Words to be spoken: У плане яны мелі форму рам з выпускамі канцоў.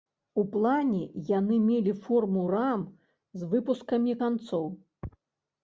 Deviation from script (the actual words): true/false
false